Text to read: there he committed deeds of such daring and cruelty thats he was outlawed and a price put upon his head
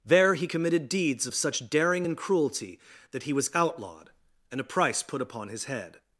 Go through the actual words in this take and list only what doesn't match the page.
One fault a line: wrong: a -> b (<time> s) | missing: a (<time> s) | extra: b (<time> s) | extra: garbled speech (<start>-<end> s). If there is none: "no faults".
wrong: thats -> that (3.1 s)